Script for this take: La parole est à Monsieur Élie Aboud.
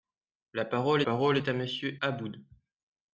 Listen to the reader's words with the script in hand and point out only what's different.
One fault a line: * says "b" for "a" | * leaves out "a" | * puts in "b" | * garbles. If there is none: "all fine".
* puts in "parole"
* leaves out "Élie"